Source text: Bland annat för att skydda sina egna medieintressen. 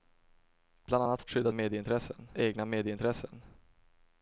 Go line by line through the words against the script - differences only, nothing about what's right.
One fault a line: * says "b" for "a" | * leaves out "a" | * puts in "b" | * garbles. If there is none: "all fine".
* leaves out "för"
* says "medieintressen" for "sina"